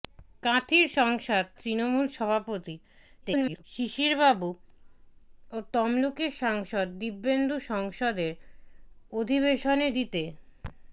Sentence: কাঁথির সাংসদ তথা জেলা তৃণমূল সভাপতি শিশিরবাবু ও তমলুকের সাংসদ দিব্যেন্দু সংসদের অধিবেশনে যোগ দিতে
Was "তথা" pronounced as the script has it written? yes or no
no